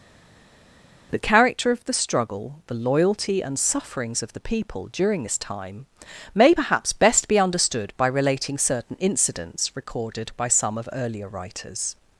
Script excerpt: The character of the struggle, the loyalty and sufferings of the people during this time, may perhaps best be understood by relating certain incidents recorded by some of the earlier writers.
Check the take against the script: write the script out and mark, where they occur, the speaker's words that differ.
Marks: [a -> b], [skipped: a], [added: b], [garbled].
The character of the struggle, the loyalty and sufferings of the people during this time, may perhaps best be understood by relating certain incidents recorded by some of [skipped: the] earlier writers.